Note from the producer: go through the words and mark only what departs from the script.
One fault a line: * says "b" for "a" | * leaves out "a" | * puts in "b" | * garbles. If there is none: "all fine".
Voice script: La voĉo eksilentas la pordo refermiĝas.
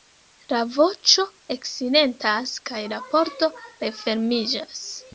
* puts in "kaj"